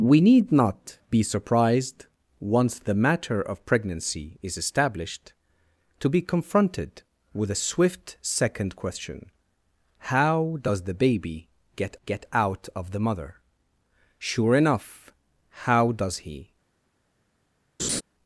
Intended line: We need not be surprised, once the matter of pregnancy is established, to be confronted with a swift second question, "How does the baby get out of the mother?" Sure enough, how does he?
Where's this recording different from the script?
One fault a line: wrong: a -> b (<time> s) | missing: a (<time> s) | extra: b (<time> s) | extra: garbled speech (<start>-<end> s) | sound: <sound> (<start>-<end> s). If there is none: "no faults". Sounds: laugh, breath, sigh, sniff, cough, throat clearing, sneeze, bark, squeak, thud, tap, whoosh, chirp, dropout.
extra: get (12.0 s)
sound: laugh (17.8-18.0 s)